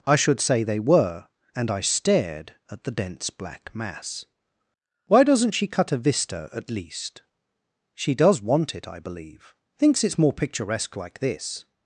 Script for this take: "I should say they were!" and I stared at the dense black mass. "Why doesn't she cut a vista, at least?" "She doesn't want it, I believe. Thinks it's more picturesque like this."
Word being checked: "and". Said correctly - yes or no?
yes